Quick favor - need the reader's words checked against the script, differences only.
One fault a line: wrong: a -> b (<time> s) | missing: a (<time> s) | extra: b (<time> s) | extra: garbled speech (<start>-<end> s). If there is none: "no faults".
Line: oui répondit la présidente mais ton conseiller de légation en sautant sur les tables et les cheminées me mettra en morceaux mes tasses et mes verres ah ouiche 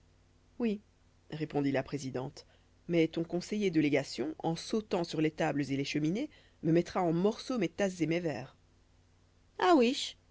no faults